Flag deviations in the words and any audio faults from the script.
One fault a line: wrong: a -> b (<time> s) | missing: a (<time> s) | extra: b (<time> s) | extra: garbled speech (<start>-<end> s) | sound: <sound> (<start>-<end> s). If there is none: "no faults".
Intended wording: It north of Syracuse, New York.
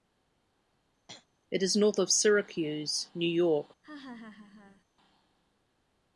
sound: throat clearing (1.1-1.3 s)
extra: is (1.6 s)
sound: laugh (3.8-4.8 s)